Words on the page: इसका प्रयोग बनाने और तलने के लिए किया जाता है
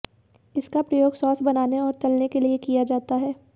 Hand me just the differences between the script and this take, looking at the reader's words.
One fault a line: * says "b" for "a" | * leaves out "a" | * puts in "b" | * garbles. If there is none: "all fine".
* puts in "सॉस"